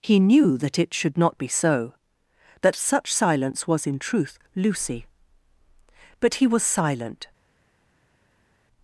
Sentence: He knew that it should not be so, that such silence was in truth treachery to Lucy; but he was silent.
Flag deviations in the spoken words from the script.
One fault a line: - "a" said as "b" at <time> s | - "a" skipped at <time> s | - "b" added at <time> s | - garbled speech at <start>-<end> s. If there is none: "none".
- "treachery to" skipped at 4.4 s